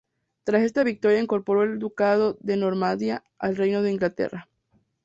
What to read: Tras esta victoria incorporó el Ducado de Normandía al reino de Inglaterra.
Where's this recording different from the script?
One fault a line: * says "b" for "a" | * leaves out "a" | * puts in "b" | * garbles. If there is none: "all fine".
all fine